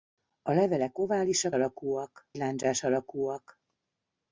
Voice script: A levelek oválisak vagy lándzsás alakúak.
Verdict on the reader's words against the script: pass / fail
fail